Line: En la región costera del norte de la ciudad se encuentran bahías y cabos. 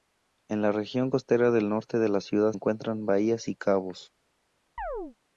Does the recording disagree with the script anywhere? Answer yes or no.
yes